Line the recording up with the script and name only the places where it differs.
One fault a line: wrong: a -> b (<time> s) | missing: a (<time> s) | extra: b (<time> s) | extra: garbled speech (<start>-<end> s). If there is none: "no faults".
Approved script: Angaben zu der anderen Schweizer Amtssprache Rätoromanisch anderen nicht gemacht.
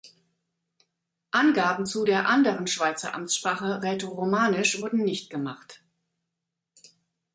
wrong: anderen -> wurden (4.8 s)